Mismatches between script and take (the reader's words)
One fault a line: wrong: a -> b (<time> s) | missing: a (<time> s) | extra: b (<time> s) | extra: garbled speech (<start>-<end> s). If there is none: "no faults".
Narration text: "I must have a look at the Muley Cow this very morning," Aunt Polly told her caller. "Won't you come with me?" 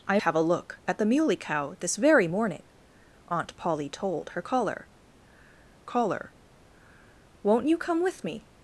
missing: must (0.2 s)
extra: caller (5.8 s)